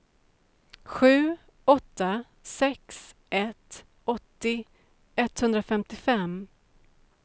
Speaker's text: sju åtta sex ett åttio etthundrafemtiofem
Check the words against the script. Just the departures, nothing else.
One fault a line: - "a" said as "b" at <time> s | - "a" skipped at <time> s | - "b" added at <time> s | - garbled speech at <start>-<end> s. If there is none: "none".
none